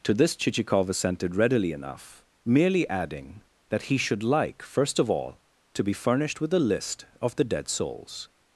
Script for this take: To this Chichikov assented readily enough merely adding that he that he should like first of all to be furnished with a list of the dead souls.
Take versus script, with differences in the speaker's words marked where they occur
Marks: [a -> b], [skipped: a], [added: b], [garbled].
To this Chichikov assented readily enough merely adding that he [skipped: that he] should like first of all to be furnished with a list of the dead souls.